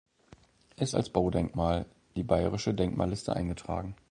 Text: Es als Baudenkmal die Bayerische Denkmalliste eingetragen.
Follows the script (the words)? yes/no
yes